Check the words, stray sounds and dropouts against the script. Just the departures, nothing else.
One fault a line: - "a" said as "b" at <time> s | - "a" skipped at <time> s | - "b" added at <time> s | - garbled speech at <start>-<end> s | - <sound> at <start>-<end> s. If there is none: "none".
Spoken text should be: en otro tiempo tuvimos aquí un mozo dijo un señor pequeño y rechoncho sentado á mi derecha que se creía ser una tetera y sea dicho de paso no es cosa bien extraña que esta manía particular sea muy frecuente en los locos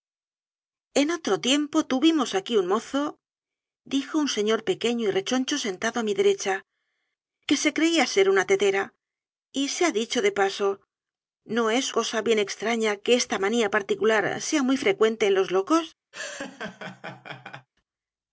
- laugh at 16.1-17.7 s